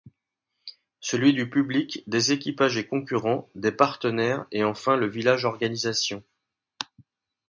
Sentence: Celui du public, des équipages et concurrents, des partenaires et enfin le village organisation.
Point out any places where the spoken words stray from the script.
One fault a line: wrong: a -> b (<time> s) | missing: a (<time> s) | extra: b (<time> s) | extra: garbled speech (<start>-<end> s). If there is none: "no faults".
no faults